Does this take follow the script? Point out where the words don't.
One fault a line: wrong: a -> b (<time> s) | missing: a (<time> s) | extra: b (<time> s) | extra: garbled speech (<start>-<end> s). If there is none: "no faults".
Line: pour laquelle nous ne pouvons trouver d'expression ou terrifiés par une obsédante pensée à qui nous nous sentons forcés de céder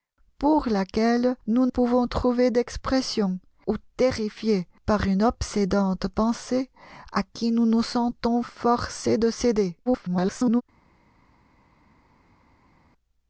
missing: ne (1.7 s)
extra: garbled speech (9.9-10.6 s)